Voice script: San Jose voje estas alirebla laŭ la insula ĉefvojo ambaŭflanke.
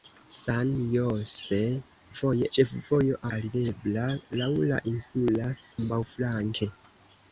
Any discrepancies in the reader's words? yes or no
yes